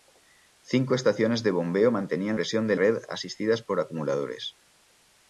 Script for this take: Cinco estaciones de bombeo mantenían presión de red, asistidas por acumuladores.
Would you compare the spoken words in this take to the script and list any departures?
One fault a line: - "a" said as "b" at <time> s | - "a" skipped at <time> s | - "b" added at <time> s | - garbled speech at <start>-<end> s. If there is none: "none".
none